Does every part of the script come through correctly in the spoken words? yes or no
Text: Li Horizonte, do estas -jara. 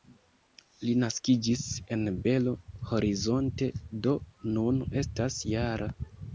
no